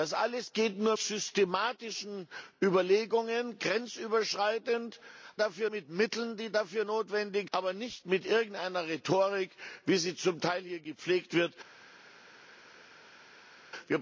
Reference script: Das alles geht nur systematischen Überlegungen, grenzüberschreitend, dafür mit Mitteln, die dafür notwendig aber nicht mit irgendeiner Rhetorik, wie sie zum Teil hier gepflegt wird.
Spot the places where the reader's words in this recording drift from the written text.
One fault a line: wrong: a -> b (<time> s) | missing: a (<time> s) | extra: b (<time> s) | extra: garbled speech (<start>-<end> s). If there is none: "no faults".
no faults